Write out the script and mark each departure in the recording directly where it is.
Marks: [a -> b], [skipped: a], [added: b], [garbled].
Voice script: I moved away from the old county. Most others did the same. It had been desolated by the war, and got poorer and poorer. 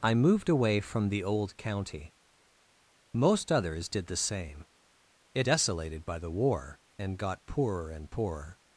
I moved away from the old county. Most others did the same. It [skipped: had been] desolated by the war, and got poorer and poorer.